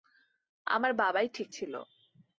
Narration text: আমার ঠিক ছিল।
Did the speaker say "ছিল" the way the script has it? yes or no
yes